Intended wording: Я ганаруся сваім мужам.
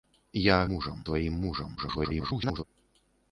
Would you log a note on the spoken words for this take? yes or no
yes